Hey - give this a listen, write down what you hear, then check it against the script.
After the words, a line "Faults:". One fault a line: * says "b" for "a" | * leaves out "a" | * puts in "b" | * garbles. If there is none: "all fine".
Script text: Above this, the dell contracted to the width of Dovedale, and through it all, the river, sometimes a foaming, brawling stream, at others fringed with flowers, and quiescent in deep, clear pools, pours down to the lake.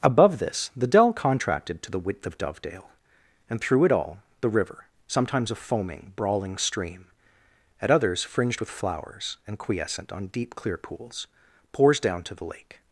Above this, the dell contracted to the width of Dovedale, and through it all, the river, sometimes a foaming, brawling stream, at others fringed with flowers, and quiescent on deep, clear pools, pours down to the lake.
Faults:
* says "on" for "in"